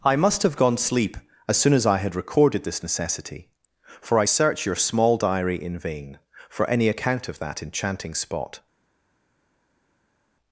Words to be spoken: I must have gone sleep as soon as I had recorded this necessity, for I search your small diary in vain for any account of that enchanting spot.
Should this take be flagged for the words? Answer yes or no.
no